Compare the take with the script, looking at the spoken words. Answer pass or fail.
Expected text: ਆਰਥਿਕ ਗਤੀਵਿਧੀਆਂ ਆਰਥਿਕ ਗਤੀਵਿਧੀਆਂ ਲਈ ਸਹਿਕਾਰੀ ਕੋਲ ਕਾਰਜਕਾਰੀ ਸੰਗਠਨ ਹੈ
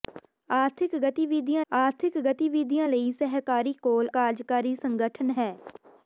pass